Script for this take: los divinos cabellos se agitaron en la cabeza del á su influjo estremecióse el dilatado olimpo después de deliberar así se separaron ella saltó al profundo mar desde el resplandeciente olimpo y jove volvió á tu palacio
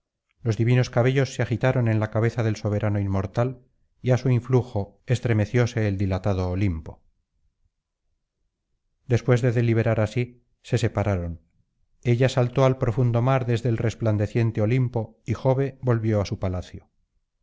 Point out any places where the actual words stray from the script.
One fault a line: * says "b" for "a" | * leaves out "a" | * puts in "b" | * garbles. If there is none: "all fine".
* puts in "soberano inmortal y"
* says "su" for "tu"